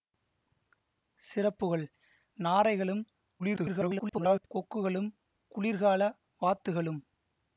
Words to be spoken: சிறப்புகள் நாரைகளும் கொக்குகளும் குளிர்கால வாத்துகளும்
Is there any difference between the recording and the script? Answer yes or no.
yes